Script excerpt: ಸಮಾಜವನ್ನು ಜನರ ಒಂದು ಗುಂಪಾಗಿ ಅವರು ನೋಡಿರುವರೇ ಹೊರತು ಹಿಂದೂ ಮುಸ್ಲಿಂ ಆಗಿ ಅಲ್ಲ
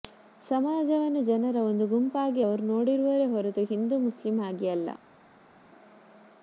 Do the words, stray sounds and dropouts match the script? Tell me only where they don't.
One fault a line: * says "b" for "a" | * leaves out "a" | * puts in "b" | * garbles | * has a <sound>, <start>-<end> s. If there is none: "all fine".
all fine